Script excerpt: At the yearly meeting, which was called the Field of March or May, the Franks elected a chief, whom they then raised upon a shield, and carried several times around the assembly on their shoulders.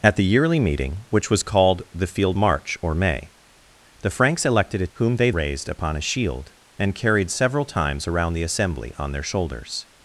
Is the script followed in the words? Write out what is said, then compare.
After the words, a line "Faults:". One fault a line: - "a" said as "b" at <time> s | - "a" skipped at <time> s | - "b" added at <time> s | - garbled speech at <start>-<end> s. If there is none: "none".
At the yearly meeting, which was called the Field March or May, the Franks elected a whom they raised upon a shield, and carried several times around the assembly on their shoulders.
Faults:
- "of" skipped at 2.4 s
- "chief" skipped at 4.9 s
- "then" skipped at 5.3 s